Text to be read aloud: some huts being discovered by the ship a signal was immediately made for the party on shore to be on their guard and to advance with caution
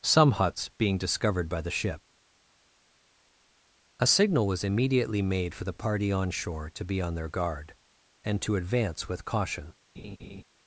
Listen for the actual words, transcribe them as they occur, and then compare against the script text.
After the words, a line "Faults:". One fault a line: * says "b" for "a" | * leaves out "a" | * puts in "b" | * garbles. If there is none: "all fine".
some huts being discovered by the ship a signal was immediately made for the party on shore to be on their guard and to advance with caution
Faults:
all fine